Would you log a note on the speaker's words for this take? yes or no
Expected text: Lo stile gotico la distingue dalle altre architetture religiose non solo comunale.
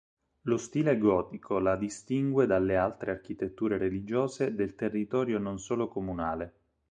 yes